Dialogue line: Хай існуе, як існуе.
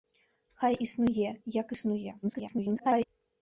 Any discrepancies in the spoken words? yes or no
yes